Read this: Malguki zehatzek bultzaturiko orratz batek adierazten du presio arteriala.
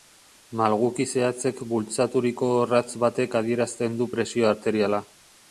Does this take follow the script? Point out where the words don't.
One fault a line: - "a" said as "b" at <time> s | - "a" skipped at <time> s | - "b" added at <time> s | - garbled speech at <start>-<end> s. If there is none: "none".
none